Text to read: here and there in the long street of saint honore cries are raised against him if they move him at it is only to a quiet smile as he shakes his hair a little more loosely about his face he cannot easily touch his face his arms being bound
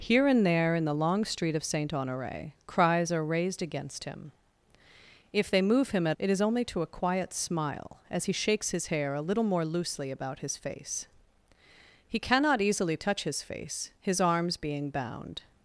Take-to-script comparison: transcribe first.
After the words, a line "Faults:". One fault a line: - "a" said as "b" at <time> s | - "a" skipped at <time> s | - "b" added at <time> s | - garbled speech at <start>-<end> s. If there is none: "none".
here and there in the long street of saint honore cries are raised against him if they move him at it is only to a quiet smile as he shakes his hair a little more loosely about his face he cannot easily touch his face his arms being bound
Faults:
none